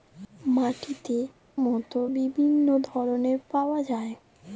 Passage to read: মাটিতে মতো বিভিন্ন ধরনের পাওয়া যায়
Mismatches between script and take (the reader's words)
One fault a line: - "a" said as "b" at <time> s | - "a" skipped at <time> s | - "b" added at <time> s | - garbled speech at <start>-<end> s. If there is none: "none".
none